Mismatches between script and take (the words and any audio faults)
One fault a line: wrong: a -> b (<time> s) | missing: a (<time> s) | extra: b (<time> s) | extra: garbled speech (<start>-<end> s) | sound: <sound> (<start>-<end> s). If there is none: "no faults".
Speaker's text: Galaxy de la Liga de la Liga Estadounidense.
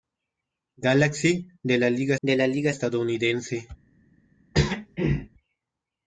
sound: throat clearing (4.5-5.3 s)